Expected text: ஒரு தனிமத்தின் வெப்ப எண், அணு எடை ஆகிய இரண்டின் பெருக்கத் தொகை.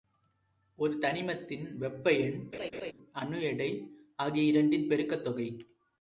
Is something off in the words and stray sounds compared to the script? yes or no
yes